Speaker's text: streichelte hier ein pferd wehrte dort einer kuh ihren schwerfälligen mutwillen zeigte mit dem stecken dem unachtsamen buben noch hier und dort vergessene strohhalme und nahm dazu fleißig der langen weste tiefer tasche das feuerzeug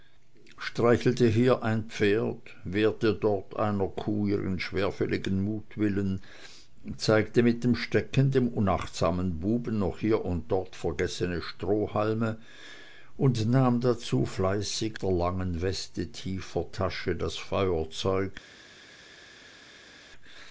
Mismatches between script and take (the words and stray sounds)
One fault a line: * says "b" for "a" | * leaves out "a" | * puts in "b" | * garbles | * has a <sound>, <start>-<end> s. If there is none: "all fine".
all fine